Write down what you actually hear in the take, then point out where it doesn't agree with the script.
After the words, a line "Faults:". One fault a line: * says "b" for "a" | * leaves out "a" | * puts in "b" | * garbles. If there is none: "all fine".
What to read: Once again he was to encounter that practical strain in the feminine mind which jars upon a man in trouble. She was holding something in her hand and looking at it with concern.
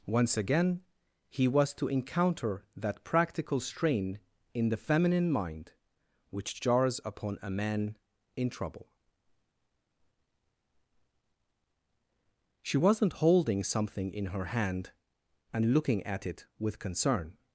Once again he was to encounter that practical strain in the feminine mind which jars upon a man in trouble. She wasn't holding something in her hand and looking at it with concern.
Faults:
* says "wasn't" for "was"